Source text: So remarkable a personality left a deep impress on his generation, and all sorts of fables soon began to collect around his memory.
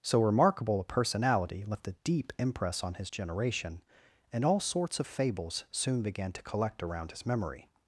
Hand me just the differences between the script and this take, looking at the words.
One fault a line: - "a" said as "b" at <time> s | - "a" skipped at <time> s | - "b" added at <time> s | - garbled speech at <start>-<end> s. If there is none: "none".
none